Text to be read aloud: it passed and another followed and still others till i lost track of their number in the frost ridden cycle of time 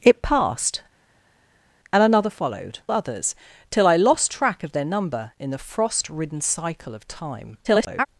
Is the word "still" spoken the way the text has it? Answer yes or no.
no